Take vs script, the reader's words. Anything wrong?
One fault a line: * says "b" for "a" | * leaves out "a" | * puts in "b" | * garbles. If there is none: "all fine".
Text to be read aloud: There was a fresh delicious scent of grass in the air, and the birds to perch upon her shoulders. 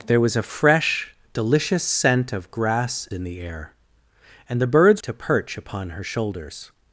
all fine